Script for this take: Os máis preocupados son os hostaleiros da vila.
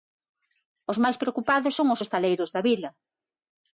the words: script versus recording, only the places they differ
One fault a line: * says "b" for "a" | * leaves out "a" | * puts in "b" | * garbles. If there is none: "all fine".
all fine